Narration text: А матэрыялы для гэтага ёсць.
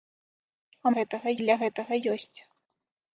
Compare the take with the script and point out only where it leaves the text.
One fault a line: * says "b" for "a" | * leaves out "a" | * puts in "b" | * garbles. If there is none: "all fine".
* says "гэтага" for "матэрыялы"